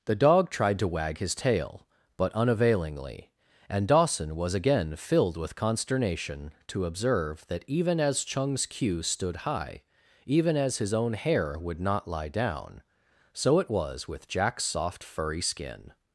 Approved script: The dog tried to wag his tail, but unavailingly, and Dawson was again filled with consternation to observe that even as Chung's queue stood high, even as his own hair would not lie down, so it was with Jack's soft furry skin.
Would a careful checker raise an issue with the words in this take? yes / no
no